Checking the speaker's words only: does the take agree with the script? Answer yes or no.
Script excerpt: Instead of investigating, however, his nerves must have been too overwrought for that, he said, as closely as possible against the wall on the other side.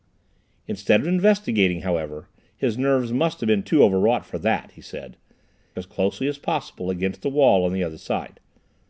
yes